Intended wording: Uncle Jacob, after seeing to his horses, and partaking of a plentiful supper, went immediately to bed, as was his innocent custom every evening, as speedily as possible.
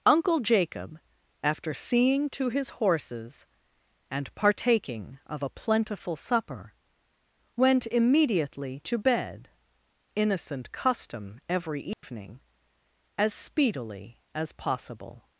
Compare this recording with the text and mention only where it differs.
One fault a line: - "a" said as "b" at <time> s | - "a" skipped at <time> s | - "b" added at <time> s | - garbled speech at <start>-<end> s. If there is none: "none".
- "as was his" skipped at 9.5 s